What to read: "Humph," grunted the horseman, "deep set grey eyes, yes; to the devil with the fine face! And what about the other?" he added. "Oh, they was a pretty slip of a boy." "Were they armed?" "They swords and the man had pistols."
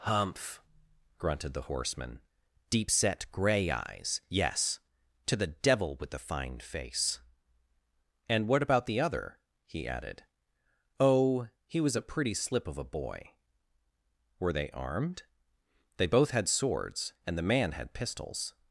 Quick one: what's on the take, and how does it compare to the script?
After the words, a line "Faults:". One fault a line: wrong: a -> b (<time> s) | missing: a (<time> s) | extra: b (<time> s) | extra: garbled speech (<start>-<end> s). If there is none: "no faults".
"Humph," grunted the horseman, "deep set grey eyes, yes; to the devil with the fine face! And what about the other?" he added. "Oh, he was a pretty slip of a boy." "Were they armed?" "They both had swords and the man had pistols."
Faults:
wrong: they -> he (11.6 s)
extra: both had (16.0 s)